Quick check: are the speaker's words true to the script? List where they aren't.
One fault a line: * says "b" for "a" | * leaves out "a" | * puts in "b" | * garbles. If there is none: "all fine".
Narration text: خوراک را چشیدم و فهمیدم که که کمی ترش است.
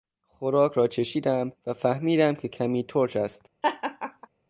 * leaves out "که"